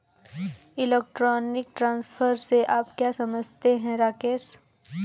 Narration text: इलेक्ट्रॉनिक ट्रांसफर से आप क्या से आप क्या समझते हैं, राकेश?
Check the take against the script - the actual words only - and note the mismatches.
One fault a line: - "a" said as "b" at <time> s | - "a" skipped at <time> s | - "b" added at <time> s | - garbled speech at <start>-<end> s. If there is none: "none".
- "से आप क्या" skipped at 3.1 s